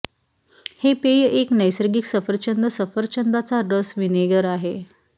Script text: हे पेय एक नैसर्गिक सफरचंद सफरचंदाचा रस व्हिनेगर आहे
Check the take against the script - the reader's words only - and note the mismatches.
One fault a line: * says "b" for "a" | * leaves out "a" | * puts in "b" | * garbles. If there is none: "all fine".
all fine